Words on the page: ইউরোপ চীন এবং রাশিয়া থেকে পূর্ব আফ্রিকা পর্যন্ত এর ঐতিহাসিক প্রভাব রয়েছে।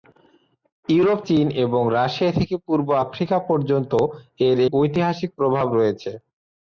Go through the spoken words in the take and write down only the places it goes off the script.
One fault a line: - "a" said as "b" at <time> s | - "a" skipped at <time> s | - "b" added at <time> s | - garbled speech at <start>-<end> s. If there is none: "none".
none